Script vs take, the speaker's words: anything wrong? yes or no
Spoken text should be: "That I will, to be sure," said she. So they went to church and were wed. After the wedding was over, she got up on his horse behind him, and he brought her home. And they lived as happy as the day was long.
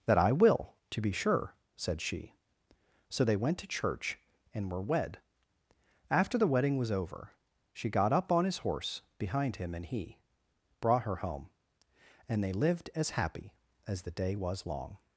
no